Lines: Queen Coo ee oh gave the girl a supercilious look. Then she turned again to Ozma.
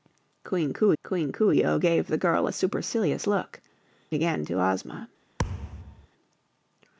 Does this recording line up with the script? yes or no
no